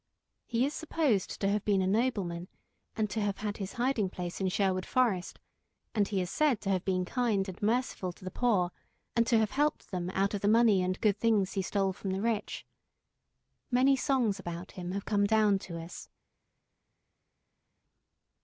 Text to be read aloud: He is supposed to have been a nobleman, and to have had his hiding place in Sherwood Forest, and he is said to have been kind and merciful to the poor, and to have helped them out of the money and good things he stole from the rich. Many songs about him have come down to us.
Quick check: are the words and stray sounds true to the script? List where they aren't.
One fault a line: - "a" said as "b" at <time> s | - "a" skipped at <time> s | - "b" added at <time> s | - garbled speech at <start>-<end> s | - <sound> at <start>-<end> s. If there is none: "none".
none